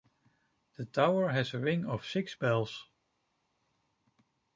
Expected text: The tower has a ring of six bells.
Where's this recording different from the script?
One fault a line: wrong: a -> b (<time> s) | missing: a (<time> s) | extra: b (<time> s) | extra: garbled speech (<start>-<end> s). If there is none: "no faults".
no faults